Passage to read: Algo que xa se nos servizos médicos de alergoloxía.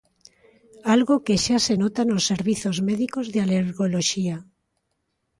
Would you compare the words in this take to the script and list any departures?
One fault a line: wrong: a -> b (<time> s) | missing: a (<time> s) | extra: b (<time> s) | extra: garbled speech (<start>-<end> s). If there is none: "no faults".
extra: nota (1.8 s)